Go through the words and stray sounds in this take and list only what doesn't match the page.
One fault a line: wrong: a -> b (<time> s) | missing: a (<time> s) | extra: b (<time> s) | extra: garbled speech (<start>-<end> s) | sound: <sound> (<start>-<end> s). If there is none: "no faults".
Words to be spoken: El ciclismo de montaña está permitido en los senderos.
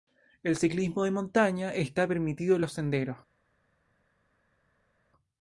no faults